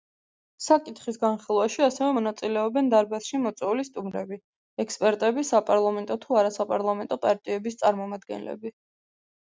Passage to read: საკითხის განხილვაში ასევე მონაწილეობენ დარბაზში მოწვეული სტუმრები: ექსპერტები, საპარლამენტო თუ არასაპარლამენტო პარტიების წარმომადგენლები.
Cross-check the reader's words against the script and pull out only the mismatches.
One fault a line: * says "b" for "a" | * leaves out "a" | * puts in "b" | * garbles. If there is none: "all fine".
all fine